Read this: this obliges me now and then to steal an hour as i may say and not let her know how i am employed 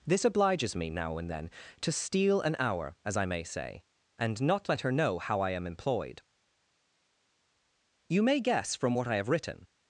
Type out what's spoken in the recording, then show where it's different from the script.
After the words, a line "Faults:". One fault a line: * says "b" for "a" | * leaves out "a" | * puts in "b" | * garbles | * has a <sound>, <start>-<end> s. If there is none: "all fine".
this obliges me now and then to steal an hour as i may say and not let her know how i am employed you may guess from what i have written
Faults:
* puts in "you may guess from what i have written"